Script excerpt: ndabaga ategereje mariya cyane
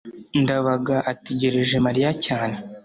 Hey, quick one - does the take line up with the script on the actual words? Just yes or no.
yes